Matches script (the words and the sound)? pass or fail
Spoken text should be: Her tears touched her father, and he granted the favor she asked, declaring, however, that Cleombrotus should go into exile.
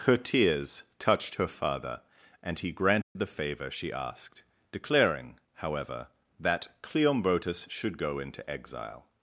fail